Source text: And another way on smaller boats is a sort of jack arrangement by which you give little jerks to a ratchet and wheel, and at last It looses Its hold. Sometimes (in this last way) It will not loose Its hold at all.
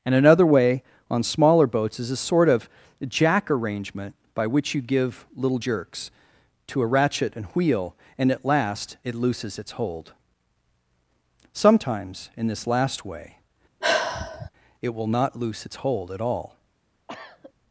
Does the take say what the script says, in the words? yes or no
yes